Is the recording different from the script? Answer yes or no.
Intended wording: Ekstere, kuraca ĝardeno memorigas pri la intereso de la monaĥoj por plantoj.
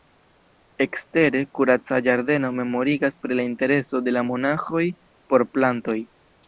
no